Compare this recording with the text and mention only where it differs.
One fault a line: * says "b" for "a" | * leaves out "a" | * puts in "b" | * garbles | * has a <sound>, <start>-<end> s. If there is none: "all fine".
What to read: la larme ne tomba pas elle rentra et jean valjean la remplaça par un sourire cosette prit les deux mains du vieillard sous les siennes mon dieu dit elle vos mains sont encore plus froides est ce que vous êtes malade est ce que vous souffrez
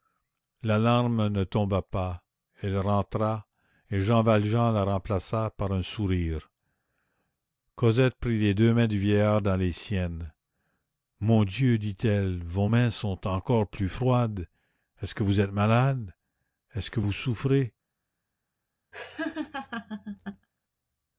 * says "dans" for "sous"
* has a laugh, 18.9-20.5 s